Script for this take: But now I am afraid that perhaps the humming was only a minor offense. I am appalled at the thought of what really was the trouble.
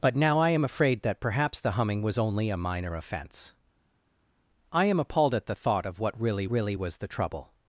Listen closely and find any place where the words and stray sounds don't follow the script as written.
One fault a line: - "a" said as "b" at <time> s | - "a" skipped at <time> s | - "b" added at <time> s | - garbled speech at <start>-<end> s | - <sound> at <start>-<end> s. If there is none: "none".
- "really" added at 6.5 s